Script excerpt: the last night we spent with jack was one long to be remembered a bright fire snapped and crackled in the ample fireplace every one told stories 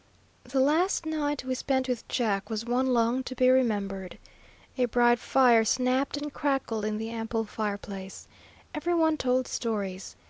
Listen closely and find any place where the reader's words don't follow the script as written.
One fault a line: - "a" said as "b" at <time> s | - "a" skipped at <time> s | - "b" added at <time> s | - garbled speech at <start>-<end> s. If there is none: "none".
none